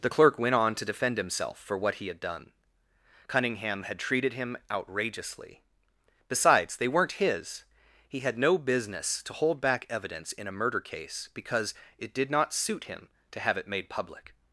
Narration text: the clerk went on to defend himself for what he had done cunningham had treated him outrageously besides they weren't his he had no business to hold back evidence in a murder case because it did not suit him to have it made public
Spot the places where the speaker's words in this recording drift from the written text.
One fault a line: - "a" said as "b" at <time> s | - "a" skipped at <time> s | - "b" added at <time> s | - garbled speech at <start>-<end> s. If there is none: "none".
none